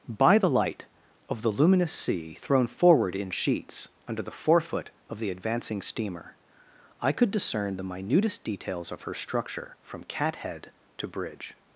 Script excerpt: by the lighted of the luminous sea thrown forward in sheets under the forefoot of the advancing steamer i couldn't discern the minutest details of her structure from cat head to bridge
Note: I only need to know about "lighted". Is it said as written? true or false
false